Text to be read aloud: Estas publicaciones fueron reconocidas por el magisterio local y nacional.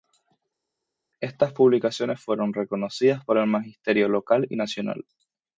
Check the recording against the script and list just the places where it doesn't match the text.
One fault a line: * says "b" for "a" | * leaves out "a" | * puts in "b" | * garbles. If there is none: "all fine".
all fine